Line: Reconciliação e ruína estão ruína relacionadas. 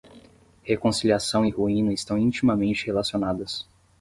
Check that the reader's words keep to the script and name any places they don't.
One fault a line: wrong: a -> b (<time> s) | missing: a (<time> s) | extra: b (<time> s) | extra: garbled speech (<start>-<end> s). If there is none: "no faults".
wrong: ruína -> intimamente (2.2 s)